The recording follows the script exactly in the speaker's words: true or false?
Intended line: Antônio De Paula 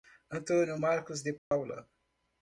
false